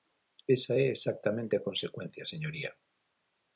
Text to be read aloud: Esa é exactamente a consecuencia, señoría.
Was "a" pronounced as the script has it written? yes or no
yes